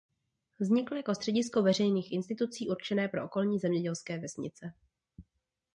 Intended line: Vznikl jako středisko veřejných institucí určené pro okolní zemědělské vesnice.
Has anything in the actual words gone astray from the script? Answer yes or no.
no